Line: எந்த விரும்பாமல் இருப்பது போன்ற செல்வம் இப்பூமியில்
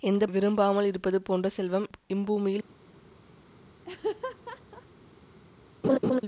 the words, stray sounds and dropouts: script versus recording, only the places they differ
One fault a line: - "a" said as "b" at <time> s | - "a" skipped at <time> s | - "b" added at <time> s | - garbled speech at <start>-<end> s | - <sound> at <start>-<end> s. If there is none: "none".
- laugh at 3.8-4.9 s
- laugh at 5.8-6.2 s